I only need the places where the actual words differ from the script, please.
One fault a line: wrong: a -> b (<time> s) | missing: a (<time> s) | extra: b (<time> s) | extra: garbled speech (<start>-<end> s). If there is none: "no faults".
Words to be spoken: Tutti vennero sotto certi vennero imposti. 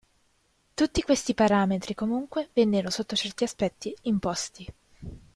extra: questi parametri comunque (1.0 s)
wrong: vennero -> aspetti (3.4 s)